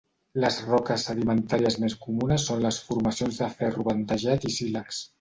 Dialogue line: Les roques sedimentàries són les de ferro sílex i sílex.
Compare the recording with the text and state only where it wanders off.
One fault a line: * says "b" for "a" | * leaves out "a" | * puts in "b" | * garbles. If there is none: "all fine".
* puts in "més comunes"
* puts in "formacions"
* says "bandejat" for "sílex"